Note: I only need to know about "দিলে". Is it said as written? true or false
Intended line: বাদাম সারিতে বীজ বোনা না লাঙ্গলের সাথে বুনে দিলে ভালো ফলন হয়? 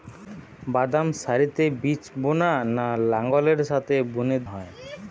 false